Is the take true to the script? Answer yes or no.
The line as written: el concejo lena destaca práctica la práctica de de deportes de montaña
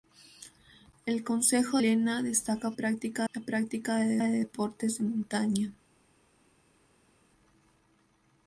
yes